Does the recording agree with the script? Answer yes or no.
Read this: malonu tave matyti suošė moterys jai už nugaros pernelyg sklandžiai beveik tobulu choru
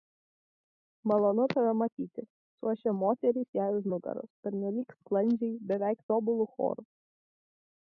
yes